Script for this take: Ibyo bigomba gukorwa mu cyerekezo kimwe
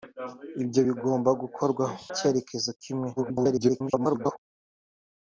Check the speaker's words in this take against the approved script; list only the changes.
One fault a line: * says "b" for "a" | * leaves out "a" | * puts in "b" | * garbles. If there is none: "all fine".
* leaves out "mu"
* garbles